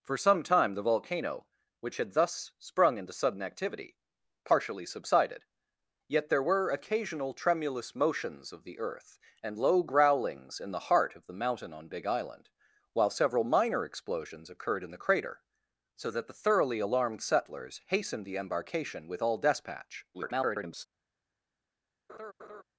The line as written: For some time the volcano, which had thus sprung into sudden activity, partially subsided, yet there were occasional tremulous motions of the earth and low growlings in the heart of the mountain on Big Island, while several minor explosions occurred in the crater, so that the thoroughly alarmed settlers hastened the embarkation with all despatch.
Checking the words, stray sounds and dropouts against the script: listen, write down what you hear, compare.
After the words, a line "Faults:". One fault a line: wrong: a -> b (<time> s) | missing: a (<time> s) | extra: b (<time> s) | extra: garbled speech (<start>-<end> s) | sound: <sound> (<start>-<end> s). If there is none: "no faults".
For some time the volcano, which had thus sprung into sudden activity, partially subsided, yet there were occasional tremulous motions of the earth and low growlings in the heart of the mountain on Big Island, while several minor explosions occurred in the crater, so that the thoroughly alarmed settlers hastened the embarkation with all despatch. [garbled]
Faults:
extra: garbled speech (20.1-20.9 s)
sound: laugh (22.1-22.6 s)